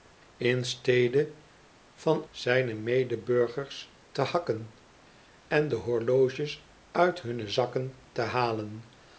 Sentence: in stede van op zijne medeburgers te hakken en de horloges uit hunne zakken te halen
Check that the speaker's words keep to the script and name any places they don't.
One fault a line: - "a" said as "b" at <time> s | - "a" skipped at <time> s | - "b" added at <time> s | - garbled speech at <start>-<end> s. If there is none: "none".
- "op" skipped at 2.2 s